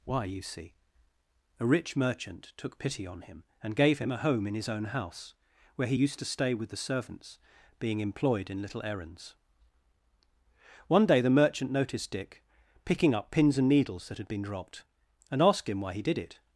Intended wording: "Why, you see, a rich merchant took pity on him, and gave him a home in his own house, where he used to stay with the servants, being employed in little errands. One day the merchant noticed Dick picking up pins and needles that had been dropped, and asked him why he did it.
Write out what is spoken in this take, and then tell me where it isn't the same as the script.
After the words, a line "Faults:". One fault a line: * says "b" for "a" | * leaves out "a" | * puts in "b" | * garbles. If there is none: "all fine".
"Why, you see, a rich merchant took pity on him, and gave him a home in his own house, where he used to stay with the servants, being employed in little errands. One day the merchant noticed Dick picking up pins and needles that had been dropped, and asked him why he did it.
Faults:
all fine